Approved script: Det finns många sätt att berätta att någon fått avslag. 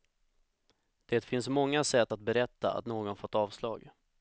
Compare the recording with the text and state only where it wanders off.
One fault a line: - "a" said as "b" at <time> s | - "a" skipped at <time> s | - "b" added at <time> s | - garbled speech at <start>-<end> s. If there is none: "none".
none